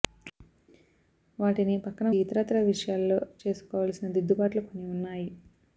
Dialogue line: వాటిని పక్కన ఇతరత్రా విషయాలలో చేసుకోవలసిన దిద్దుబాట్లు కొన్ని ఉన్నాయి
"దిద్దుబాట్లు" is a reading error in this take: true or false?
false